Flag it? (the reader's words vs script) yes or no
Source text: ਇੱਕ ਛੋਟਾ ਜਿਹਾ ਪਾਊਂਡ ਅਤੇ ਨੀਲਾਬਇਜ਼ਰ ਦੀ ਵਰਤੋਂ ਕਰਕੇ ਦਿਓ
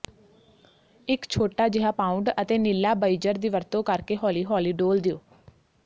yes